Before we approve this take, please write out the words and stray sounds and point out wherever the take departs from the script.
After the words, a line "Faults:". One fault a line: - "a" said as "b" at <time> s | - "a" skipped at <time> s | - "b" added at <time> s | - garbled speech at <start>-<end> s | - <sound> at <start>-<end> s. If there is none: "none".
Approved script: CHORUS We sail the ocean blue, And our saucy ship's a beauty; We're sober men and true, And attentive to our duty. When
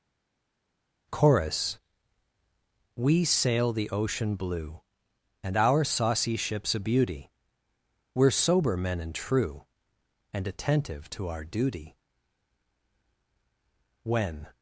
CHORUS We sail the ocean blue, And our saucy ship's a beauty; We're sober men and true, And attentive to our duty. When
Faults:
none